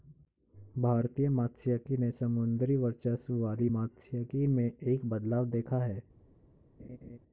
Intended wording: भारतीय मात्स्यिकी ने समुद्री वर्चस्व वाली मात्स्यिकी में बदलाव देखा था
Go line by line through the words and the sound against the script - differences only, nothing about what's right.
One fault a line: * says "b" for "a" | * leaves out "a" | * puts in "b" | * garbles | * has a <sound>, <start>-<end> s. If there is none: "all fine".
* puts in "एक"
* says "है" for "था"
* has a laugh, 6.8-7.2 s